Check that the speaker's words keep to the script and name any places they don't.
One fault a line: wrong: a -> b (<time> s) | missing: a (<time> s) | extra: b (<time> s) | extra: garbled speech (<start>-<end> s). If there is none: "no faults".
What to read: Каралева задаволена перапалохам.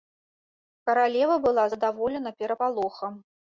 extra: была (1.4 s)